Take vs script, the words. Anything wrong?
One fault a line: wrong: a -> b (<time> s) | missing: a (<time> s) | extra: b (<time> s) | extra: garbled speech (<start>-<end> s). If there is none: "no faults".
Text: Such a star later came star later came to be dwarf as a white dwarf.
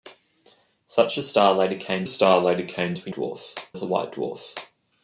no faults